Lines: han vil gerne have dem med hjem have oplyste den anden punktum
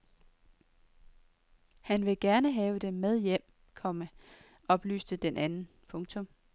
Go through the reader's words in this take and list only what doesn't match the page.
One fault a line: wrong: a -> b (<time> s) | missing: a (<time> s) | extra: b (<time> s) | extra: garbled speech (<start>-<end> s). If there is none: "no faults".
wrong: have -> komma (3.7 s)